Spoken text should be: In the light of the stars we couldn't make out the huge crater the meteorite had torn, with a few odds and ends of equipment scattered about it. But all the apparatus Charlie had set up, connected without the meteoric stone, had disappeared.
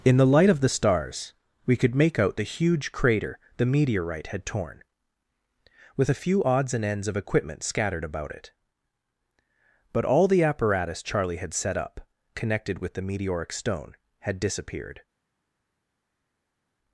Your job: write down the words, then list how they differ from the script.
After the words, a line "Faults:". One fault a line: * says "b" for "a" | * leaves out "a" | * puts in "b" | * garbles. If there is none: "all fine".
In the light of the stars we could make out the huge crater the meteorite had torn, with a few odds and ends of equipment scattered about it. But all the apparatus Charlie had set up, connected with the meteoric stone, had disappeared.
Faults:
* says "could" for "couldn't"
* says "with" for "without"